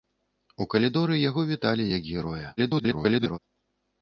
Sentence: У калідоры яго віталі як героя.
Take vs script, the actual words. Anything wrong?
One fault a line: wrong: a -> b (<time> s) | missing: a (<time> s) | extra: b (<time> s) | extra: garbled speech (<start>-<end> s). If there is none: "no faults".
extra: garbled speech (2.6-3.4 s)